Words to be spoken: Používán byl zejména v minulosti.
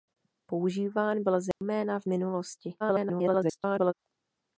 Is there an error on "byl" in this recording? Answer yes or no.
no